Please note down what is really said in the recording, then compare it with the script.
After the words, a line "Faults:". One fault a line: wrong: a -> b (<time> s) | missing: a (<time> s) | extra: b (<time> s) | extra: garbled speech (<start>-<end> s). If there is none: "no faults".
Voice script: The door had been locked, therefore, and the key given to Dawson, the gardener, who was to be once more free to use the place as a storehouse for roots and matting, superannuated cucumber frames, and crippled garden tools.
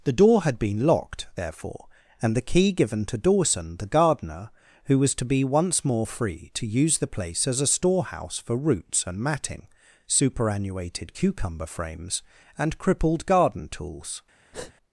The door had been locked, therefore, and the key given to Dawson, the gardener, who was to be once more free to use the place as a storehouse for roots and matting, superannuated cucumber frames, and crippled garden tools.
Faults:
no faults